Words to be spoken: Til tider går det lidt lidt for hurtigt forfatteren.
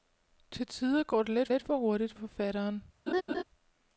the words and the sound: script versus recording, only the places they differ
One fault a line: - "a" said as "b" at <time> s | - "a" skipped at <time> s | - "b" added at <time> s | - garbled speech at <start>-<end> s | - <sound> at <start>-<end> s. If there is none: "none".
- laugh at 3.1-3.4 s